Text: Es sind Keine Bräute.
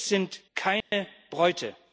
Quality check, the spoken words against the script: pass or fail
pass